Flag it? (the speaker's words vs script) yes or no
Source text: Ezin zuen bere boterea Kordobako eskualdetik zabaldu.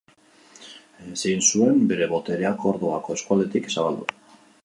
no